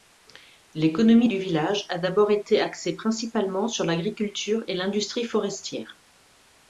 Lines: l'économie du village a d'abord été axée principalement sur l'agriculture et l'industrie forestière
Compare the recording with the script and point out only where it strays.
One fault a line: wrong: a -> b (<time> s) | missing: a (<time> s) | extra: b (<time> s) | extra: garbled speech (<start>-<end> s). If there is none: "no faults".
no faults